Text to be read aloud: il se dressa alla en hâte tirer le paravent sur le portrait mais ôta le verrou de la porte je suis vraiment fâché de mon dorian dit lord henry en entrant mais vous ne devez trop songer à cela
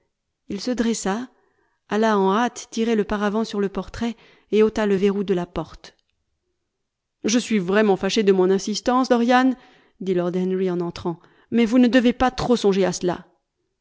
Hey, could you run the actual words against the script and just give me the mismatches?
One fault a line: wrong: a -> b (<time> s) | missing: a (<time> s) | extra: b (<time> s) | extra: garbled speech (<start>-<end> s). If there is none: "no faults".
wrong: mais -> et (4.5 s)
extra: insistance (8.5 s)
extra: pas (12.1 s)